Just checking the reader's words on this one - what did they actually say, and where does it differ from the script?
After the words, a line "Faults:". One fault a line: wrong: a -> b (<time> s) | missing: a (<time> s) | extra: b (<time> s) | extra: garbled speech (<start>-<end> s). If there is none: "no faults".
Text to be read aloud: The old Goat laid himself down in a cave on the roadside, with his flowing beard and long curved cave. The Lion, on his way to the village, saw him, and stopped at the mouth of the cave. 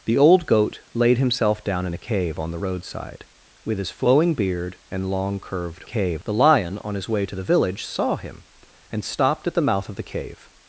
The old Goat laid himself down in a cave on the roadside, with his flowing beard and long curved cave. The Lion, on his way to the village, saw him, and stopped at the mouth of the cave.
Faults:
no faults